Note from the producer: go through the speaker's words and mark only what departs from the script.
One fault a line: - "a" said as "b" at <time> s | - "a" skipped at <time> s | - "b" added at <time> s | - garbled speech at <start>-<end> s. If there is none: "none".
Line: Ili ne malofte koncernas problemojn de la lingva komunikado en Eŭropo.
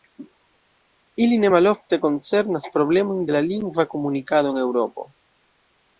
none